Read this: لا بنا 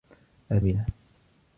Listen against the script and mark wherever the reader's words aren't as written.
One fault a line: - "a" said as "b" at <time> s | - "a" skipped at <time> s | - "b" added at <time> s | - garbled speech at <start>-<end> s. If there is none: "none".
none